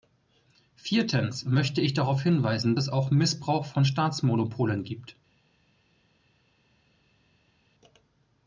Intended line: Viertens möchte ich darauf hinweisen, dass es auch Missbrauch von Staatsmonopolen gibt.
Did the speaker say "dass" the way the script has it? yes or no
no